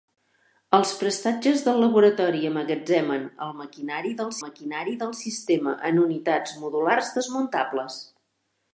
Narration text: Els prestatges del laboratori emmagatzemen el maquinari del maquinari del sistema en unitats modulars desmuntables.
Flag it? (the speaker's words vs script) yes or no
no